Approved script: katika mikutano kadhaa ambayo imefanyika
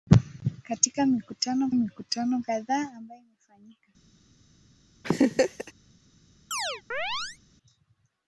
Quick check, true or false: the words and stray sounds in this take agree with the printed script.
false